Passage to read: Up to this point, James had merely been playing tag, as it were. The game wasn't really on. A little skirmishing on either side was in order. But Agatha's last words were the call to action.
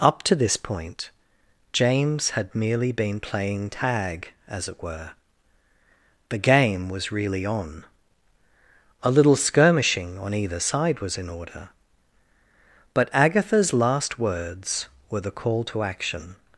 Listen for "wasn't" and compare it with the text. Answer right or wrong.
wrong